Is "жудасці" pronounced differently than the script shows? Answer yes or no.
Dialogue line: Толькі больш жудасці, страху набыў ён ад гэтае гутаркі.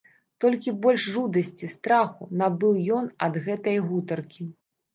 no